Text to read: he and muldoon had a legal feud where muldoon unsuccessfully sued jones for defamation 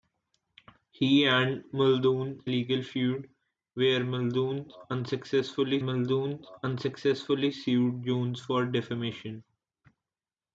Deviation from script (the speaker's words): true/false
true